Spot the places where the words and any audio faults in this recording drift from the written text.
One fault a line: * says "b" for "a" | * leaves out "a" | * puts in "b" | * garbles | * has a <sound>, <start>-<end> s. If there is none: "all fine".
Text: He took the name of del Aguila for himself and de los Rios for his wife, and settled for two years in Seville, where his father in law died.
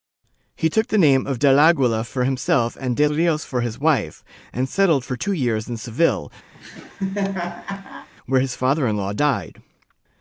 * leaves out "los"
* has a laugh, 6.5-8.1 s